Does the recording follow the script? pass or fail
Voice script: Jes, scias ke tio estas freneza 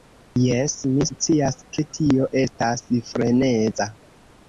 fail